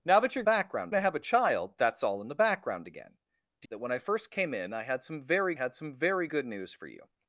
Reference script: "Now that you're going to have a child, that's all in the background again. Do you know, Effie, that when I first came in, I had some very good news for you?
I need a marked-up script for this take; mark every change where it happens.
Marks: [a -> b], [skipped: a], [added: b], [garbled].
"Now that you're [going -> background] to have a child, that's all in the background again. Do [skipped: you know, Effie,] that when I first came in, I had some very [added: had some very] good news for you?